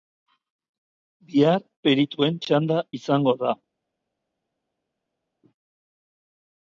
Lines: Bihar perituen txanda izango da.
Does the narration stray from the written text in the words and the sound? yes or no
no